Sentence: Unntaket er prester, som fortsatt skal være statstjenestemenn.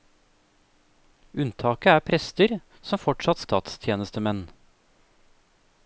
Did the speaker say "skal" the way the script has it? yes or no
no